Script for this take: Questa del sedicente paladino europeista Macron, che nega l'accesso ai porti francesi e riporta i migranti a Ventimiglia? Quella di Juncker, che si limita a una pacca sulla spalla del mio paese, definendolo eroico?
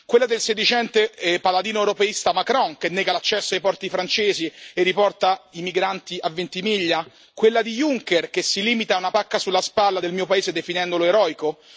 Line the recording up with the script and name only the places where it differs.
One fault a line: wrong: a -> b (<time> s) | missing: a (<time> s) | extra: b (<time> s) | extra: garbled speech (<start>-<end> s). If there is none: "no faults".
wrong: Questa -> Quella (0.1 s)